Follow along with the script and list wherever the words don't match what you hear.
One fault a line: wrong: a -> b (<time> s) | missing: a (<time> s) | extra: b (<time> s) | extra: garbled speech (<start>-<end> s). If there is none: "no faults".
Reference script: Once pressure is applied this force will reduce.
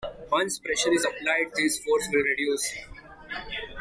no faults